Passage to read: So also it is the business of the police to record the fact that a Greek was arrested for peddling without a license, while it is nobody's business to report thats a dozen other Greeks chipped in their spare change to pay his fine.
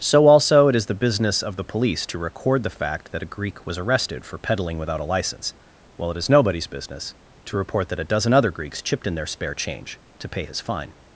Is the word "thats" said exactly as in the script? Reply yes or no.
no